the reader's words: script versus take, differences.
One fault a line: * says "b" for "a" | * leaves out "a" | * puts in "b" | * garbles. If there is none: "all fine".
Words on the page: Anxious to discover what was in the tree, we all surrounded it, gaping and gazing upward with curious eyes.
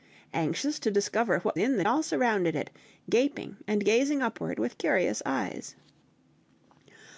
* leaves out "was"
* leaves out "tree we"